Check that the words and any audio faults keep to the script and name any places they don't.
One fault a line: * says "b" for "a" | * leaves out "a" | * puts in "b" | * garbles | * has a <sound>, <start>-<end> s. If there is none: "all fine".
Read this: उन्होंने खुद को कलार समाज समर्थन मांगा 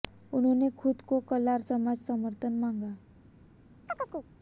* has a chirp, 3.9-4.3 s